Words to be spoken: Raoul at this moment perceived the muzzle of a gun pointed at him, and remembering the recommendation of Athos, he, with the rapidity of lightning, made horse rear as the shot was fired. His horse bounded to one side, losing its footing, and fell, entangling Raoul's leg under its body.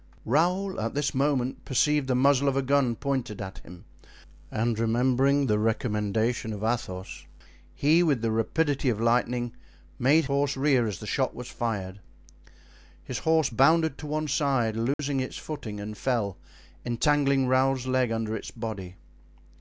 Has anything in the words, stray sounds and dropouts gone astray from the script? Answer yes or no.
yes